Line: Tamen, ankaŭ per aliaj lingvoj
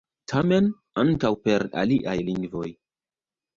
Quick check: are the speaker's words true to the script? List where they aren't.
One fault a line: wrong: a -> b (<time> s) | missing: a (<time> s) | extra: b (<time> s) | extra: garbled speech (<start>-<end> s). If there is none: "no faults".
no faults